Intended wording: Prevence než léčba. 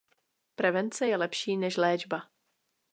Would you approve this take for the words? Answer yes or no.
no